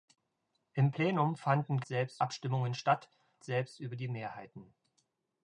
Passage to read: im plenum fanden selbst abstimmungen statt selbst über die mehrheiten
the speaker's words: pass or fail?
pass